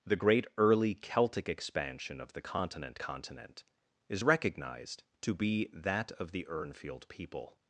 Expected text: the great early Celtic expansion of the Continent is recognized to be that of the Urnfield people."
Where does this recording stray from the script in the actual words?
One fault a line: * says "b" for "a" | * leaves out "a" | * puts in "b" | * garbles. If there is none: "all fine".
* puts in "Continent"